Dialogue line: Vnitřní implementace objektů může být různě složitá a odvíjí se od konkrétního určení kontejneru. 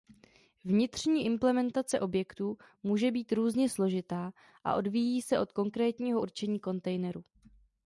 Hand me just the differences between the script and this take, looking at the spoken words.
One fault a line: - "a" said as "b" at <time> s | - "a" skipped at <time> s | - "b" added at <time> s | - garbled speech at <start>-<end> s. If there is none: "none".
none